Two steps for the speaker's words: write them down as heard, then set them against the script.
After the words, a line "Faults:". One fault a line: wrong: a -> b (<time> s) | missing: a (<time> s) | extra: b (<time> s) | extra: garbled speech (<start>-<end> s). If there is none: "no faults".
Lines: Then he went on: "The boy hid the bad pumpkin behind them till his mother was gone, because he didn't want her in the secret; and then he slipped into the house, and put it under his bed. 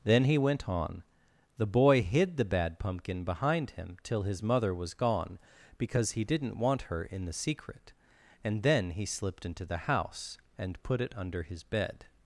Then he went on: "The boy hid the bad pumpkin behind him till his mother was gone, because he didn't want her in the secret; and then he slipped into the house, and put it under his bed.
Faults:
wrong: them -> him (3.7 s)